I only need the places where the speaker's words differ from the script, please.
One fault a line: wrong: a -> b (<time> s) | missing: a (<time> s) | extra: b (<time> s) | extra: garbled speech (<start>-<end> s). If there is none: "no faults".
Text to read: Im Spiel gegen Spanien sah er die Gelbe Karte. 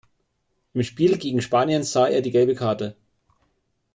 no faults